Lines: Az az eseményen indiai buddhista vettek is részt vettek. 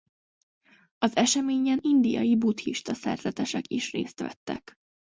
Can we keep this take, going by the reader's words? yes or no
no